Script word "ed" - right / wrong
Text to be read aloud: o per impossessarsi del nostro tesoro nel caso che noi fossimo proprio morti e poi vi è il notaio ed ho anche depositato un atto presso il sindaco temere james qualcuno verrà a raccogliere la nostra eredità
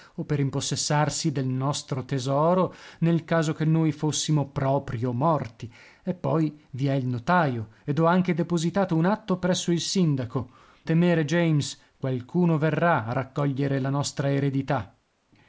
right